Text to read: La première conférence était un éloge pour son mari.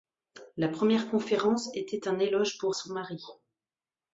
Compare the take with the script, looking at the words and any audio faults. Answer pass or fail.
pass